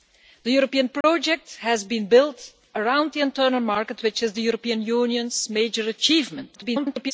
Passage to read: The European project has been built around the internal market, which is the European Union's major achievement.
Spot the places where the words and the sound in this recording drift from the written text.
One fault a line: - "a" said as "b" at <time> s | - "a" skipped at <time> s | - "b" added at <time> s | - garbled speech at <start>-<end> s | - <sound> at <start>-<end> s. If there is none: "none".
- dropout at 1.0-1.0 s
- garbled speech at 6.5-7.1 s